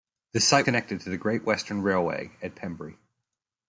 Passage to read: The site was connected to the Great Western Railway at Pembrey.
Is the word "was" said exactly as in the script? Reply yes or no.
no